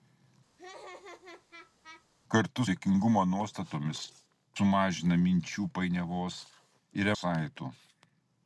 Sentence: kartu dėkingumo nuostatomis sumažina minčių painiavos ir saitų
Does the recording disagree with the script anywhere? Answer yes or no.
no